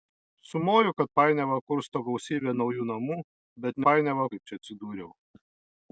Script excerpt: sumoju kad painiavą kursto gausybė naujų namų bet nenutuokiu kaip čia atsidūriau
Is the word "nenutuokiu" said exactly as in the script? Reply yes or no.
no